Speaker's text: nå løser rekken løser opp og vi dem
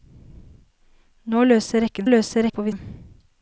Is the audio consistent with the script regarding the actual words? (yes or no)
yes